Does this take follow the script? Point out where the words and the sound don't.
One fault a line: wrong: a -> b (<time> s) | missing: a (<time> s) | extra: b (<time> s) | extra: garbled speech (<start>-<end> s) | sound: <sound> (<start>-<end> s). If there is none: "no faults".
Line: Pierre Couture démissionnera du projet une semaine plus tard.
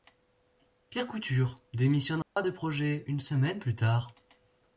sound: dropout (2.2-2.4 s)